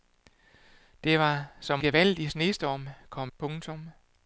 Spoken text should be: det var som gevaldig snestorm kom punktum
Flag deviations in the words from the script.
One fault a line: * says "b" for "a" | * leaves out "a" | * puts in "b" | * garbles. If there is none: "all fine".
all fine